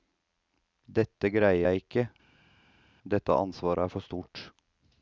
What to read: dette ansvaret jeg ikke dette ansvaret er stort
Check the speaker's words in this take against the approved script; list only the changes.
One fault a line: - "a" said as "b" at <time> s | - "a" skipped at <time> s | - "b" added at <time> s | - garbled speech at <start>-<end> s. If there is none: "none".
- "ansvaret" said as "greier" at 1.4 s
- "for" added at 4.0 s